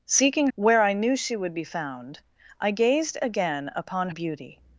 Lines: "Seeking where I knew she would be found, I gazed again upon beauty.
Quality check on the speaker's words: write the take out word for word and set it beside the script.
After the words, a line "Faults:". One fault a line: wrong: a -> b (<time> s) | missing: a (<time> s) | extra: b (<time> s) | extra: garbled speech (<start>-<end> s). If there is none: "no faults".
"Seeking where I knew she would be found, I gazed again upon beauty.
Faults:
no faults